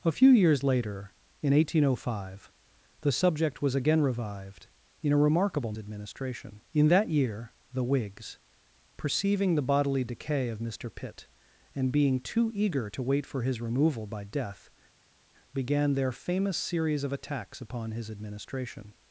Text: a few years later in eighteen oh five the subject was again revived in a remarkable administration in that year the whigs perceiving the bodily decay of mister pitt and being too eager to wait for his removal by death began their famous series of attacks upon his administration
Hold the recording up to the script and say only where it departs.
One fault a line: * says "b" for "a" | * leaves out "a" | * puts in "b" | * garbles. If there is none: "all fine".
all fine